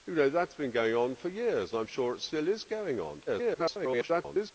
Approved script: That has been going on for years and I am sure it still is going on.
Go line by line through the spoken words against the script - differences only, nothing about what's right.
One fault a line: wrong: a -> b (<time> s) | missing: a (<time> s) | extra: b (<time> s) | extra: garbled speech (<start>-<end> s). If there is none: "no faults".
extra: garbled speech (3.3-4.5 s)